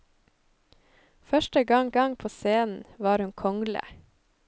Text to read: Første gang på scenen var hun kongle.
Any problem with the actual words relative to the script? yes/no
yes